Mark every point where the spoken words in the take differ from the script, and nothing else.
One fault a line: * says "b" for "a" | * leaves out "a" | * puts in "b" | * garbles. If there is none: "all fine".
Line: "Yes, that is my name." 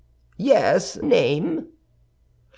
* leaves out "that is my"